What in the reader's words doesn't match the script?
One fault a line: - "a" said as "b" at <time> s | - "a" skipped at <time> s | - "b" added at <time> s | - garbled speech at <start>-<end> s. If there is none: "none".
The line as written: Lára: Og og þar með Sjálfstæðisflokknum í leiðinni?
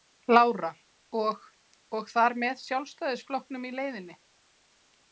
none